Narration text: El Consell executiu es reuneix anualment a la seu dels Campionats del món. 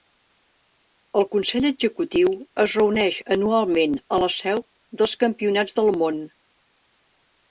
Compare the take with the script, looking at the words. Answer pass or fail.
pass